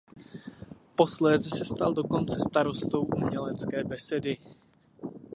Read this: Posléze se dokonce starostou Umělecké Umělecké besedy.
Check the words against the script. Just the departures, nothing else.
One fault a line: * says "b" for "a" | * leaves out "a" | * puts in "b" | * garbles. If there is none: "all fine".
* puts in "stal"
* leaves out "Umělecké"